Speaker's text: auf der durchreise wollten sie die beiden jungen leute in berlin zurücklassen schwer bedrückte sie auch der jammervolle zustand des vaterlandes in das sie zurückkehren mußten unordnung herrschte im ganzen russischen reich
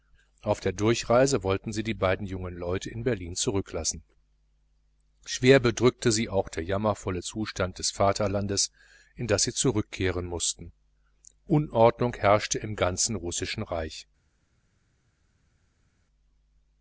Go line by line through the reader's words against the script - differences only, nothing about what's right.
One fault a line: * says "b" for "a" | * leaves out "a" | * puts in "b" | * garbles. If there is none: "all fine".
all fine